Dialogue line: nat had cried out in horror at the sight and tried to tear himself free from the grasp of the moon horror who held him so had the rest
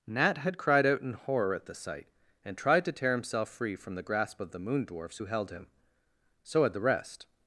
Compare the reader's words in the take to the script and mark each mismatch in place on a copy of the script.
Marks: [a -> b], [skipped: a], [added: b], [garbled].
nat had cried out in horror at the sight and tried to tear himself free from the grasp of the moon [horror -> dwarfs] who held him so had the rest